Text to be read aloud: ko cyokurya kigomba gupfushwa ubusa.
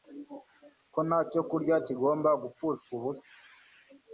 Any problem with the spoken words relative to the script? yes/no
yes